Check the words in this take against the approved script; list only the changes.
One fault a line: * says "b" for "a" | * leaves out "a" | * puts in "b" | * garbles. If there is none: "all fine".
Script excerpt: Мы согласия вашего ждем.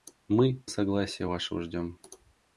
all fine